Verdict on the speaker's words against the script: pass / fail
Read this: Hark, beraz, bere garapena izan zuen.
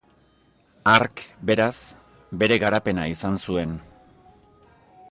pass